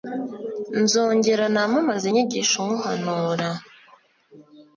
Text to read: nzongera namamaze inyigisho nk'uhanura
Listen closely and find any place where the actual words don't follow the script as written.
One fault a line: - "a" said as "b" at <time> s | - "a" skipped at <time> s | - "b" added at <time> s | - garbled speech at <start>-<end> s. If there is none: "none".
none